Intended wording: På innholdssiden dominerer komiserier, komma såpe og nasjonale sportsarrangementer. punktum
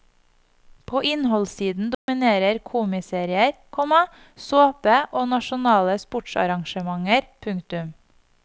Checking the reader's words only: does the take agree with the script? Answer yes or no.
yes